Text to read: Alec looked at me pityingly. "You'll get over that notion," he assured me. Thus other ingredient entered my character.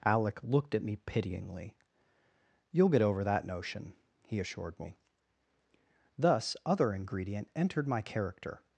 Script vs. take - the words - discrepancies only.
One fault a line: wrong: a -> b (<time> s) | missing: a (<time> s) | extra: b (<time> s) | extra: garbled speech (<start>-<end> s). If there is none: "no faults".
no faults